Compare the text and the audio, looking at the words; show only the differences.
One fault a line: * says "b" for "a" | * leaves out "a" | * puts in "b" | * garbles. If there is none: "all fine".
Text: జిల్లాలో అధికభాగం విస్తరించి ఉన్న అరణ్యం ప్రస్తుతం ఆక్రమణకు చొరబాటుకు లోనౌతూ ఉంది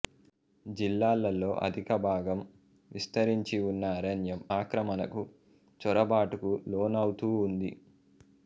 * leaves out "ప్రస్తుతం"